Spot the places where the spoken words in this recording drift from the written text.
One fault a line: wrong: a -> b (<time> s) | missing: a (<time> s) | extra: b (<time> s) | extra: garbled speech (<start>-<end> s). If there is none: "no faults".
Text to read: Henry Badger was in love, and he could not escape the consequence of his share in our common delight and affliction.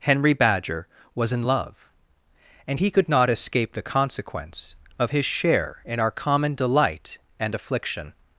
no faults